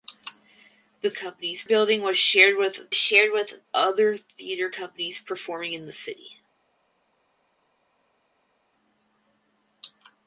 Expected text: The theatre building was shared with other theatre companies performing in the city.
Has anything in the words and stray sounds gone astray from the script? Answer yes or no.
yes